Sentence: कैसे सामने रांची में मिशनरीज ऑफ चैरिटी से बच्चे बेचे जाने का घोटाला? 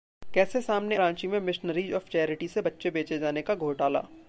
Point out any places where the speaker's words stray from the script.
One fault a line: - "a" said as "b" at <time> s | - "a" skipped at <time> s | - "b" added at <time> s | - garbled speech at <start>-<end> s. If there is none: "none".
none